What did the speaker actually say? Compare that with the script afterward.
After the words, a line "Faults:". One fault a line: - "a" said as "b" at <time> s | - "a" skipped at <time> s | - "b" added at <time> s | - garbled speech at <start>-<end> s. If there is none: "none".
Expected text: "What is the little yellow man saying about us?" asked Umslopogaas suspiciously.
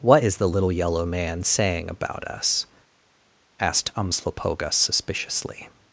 "What is the little yellow man saying about us?" asked Umslopogaas suspiciously.
Faults:
none